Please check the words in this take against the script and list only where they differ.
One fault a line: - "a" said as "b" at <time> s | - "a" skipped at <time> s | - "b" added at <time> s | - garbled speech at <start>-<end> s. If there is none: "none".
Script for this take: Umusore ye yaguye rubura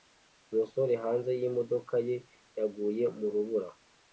- "hanze yimodoka" added at 1.0 s
- "mu" added at 3.2 s